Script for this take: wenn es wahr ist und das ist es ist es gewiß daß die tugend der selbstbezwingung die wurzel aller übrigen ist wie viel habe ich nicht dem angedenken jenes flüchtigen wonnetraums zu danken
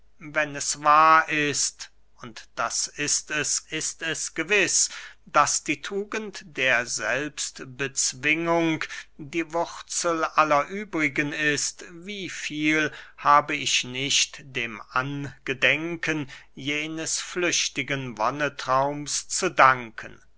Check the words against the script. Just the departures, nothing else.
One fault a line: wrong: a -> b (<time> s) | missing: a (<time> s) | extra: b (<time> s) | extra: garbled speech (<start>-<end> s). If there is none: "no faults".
no faults